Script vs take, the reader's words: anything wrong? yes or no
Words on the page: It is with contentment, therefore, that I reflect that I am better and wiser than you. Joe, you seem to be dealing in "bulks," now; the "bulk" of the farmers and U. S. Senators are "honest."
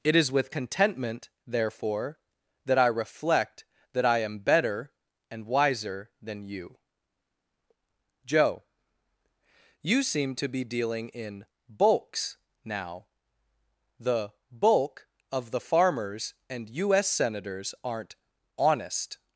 yes